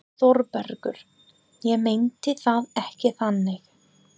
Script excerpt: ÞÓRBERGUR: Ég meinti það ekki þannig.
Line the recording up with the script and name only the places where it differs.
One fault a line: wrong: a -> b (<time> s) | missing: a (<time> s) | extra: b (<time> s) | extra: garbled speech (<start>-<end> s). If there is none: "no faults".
no faults